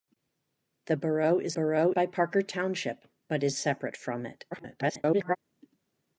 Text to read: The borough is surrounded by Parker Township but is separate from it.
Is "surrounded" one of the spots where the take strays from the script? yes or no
yes